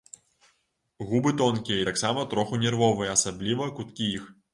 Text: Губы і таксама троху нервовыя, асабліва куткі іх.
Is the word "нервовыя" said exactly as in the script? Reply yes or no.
yes